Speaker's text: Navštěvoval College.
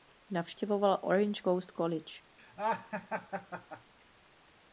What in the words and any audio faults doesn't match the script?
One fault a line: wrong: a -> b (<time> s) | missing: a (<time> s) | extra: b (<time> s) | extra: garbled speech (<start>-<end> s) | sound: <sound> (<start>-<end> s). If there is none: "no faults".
extra: Orange Coast (1.0 s)
sound: laugh (2.4-3.9 s)